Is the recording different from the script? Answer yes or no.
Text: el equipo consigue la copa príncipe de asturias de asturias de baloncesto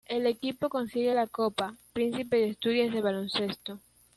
yes